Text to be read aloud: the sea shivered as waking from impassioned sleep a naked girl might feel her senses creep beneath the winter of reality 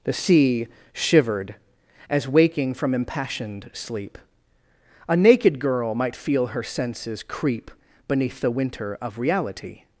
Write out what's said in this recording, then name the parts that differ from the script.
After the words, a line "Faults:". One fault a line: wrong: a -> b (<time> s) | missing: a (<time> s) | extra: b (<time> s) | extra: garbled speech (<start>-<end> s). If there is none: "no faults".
the sea shivered as waking from impassioned sleep a naked girl might feel her senses creep beneath the winter of reality
Faults:
no faults